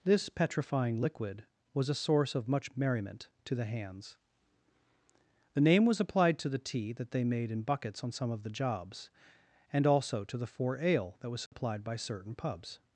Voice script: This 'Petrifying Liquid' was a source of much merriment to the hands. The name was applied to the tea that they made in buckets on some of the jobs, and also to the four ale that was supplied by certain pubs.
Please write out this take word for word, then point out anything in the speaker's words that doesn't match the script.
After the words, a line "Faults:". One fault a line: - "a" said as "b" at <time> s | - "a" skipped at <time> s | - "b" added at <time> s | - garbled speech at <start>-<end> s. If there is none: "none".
This 'Petrifying Liquid' was a source of much merriment to the hands. The name was applied to the tea that they made in buckets on some of the jobs, and also to the four ale that was supplied by certain pubs.
Faults:
none